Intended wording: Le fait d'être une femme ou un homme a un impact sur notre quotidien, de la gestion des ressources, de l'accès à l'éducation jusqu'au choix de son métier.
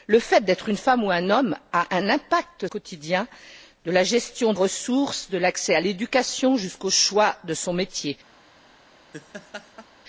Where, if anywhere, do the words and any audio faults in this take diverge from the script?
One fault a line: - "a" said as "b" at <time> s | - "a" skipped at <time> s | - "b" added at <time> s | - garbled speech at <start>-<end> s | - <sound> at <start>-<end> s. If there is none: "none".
- "sur notre" skipped at 2.7 s
- "des" skipped at 4.5 s
- laugh at 9.1-9.9 s